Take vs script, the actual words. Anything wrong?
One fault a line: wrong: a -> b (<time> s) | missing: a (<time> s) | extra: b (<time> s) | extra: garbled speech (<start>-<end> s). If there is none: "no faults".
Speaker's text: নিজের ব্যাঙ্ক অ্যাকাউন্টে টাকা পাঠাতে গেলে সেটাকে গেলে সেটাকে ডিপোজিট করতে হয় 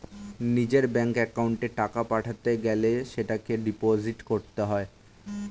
missing: গেলে সেটাকে (3.5 s)